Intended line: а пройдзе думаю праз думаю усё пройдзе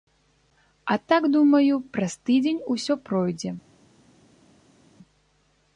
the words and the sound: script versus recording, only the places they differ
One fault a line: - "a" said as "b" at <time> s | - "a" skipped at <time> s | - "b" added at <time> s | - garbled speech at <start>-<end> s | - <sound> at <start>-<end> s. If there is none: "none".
- "пройдзе" said as "так" at 1.1 s
- "думаю" said as "тыдзень" at 2.3 s